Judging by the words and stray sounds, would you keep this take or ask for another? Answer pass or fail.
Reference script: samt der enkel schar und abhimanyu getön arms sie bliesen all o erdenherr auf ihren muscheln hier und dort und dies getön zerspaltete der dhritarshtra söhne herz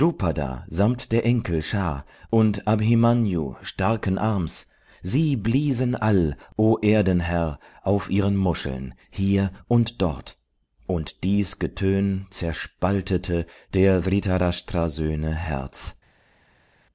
fail